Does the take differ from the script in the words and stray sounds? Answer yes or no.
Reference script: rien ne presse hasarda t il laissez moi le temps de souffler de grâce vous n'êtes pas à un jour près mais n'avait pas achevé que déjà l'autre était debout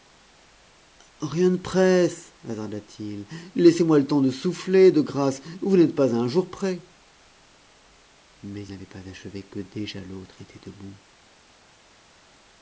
no